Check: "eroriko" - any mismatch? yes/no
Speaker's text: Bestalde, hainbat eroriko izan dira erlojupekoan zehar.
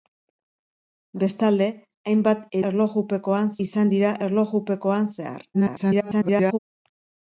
yes